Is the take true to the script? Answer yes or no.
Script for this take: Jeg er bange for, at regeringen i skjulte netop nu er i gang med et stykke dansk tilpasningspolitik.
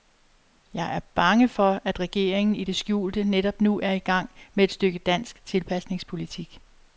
no